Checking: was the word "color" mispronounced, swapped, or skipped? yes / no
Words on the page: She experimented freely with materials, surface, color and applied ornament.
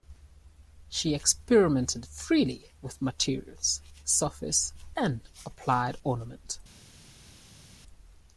yes